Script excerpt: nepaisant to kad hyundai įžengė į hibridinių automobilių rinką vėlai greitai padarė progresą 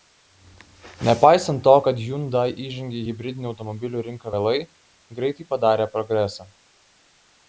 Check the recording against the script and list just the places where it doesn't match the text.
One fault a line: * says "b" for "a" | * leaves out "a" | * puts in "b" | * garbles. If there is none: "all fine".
all fine